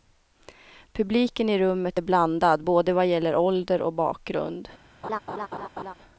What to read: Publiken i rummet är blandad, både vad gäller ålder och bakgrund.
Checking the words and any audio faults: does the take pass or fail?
fail